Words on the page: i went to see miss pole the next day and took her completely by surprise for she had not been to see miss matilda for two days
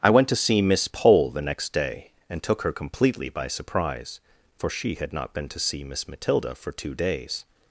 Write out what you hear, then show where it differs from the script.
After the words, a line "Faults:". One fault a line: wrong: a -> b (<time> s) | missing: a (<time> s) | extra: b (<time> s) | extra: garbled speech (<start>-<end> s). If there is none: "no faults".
i went to see miss pole the next day and took her completely by surprise for she had not been to see miss matilda for two days
Faults:
no faults